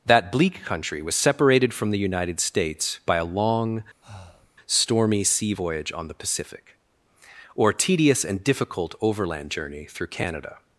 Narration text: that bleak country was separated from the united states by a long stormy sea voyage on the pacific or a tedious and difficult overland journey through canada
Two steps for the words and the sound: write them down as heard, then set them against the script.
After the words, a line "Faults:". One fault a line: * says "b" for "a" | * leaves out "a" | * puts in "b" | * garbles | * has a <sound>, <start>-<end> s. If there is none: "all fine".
that bleak country was separated from the united states by a long stormy sea voyage on the pacific or tedious and difficult overland journey through canada
Faults:
* has a breath, 4.0-4.5 s
* leaves out "a"